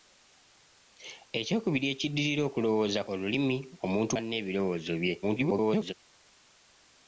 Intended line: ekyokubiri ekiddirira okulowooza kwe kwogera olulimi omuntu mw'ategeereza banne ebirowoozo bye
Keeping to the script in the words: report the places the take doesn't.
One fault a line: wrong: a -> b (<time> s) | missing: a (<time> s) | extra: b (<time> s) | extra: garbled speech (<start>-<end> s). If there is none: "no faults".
missing: kwe kwogera (3.0 s)
missing: mw'ategeereza (4.1 s)
extra: garbled speech (5.2-5.9 s)